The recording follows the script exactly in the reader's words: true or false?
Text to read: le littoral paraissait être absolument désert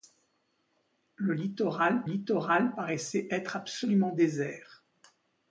false